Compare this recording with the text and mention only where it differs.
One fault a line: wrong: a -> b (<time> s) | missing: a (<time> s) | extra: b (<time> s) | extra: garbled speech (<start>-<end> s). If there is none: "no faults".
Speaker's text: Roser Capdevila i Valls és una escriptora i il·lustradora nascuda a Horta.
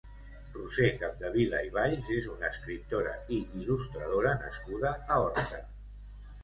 no faults